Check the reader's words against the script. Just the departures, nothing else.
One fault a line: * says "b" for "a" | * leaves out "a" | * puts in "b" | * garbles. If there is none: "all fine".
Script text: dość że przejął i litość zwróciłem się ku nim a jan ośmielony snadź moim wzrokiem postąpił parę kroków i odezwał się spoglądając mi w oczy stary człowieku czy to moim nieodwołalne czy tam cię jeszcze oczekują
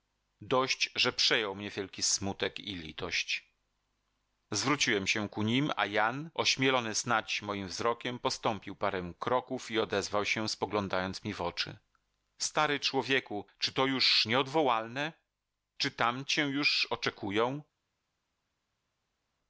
* puts in "mnie wielki smutek"
* says "już" for "moim"
* says "już" for "jeszcze"